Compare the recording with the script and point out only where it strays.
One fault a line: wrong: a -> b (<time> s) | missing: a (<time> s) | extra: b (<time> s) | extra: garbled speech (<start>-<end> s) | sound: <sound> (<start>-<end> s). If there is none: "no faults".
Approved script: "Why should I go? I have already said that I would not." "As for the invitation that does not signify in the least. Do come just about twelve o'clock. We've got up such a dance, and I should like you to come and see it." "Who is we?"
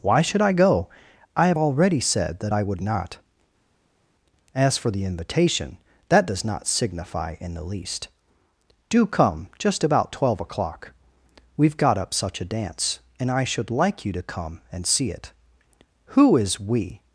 no faults